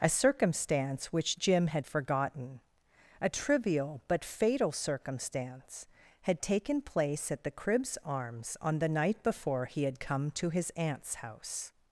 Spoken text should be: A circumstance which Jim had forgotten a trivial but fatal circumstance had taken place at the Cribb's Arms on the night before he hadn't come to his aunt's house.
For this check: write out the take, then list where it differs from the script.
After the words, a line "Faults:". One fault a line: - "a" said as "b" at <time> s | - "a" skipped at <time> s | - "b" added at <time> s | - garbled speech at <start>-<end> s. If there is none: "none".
A circumstance which Jim had forgotten a trivial but fatal circumstance had taken place at the Cribb's Arms on the night before he had come to his aunt's house.
Faults:
- "hadn't" said as "had" at 9.8 s